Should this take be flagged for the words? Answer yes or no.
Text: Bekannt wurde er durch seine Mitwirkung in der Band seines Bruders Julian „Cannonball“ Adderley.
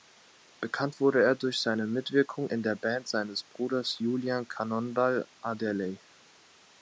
no